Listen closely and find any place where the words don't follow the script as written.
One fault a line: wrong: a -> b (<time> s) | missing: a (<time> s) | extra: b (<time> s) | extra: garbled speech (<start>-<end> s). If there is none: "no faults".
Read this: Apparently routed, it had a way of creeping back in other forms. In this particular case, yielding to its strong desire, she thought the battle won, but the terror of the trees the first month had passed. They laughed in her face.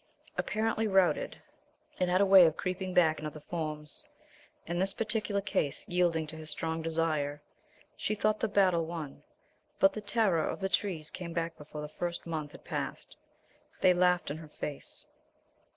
wrong: its -> his (6.4 s)
extra: came back before (11.1 s)